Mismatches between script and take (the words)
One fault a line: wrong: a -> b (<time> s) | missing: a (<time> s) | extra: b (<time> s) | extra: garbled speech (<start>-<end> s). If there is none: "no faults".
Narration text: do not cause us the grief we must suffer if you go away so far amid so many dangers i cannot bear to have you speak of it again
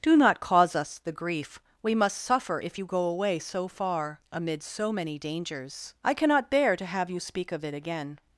no faults